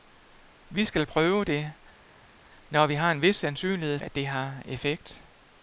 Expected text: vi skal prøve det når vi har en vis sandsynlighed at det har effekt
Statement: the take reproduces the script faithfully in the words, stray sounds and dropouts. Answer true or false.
true